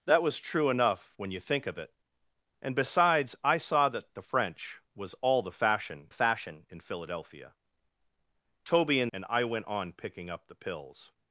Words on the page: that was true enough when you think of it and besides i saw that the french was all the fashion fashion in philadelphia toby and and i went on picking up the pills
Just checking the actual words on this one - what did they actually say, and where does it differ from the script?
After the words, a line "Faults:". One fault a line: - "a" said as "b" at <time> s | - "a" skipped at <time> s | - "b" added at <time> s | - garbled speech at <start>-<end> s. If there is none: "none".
that was true enough when you think of it and besides i saw that the french was all the fashion fashion in philadelphia toby and and i went on picking up the pills
Faults:
none